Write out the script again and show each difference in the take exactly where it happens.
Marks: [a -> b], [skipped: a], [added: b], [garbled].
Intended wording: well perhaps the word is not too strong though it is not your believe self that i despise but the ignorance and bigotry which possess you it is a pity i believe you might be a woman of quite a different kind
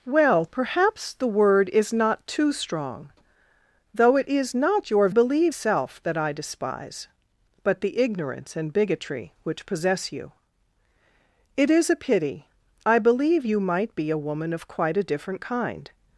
well perhaps the word is not too strong though it is not your believe self that i despise but the ignorance and bigotry which possess you it is a pity i believe you might be a woman of quite a different kind